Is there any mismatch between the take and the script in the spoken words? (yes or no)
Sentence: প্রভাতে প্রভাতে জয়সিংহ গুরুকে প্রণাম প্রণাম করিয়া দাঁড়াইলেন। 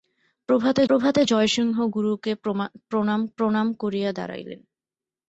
no